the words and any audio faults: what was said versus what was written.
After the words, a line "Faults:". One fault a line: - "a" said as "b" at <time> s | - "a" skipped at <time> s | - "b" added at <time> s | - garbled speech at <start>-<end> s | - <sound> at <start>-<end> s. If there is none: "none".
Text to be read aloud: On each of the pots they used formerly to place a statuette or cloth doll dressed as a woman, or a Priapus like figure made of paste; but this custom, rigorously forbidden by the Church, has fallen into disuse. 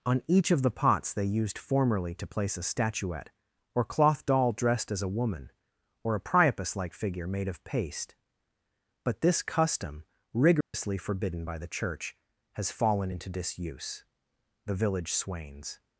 On each of the pots they used formerly to place a statuette or cloth doll dressed as a woman, or a Priapus like figure made of paste; but this custom, rigorously forbidden by the Church, has fallen into disuse. The village swains
Faults:
- dropout at 10.6-10.7 s
- "The village swains" added at 14.7 s